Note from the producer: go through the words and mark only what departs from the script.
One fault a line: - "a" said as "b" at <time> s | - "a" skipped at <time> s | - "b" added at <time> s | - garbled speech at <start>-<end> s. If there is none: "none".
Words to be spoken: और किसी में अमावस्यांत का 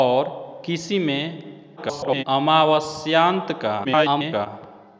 - garbled speech at 1.8-2.2 s
- garbled speech at 3.8-4.5 s